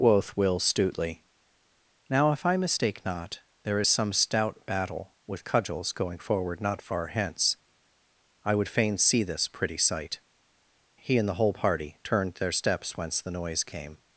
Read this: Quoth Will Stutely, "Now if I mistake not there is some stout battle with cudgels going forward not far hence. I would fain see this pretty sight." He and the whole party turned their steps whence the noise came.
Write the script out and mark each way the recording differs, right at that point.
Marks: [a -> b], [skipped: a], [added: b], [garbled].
Quoth Will Stutely, "Now if I mistake not there is some stout battle with cudgels going forward not far hence. I would fain see this pretty sight." He and the whole party turned their steps whence the noise came.